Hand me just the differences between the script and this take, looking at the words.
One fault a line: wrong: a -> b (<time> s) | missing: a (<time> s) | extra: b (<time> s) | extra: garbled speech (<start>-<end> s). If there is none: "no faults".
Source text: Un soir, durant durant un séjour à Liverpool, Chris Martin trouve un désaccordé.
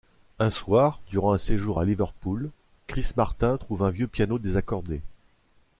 missing: durant (1.3 s)
extra: vieux piano (3.9 s)